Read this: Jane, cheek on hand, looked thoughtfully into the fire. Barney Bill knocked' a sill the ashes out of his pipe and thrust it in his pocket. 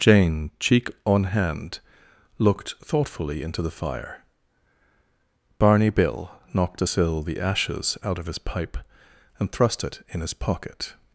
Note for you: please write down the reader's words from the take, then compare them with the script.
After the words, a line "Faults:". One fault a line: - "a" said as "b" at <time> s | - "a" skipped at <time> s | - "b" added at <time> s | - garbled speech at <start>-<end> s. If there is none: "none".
Jane, cheek on hand, looked thoughtfully into the fire. Barney Bill knocked' a sill the ashes out of his pipe and thrust it in his pocket.
Faults:
none